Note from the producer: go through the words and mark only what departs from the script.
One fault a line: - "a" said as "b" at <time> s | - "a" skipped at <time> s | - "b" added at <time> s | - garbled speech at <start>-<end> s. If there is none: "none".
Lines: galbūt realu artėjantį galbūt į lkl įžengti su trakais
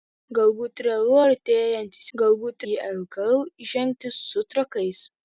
none